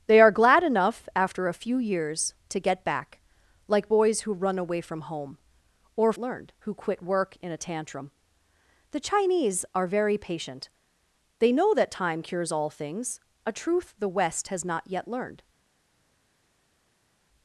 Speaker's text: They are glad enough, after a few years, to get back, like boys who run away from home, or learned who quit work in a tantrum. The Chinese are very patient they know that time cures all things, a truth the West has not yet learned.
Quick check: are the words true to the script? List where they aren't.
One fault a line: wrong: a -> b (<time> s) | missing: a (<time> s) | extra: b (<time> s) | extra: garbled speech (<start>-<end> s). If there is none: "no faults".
no faults